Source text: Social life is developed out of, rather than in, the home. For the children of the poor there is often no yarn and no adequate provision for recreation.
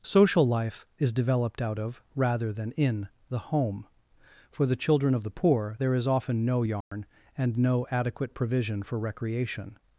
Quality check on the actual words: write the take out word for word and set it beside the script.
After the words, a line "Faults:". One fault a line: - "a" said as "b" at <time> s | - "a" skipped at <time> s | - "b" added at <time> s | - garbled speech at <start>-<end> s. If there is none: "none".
Social life is developed out of, rather than in, the home. For the children of the poor there is often no yarn and no adequate provision for recreation.
Faults:
none